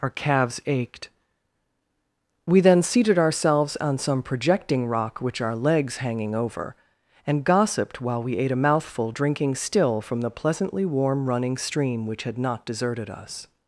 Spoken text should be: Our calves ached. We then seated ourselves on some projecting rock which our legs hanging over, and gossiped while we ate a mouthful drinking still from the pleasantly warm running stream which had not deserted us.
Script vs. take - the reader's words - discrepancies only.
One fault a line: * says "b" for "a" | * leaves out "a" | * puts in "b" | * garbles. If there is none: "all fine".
all fine